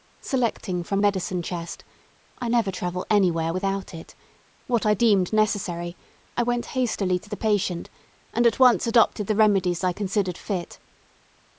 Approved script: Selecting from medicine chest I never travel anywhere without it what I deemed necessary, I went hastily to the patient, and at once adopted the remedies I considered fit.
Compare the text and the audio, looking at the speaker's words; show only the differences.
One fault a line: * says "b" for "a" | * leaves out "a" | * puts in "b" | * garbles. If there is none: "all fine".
all fine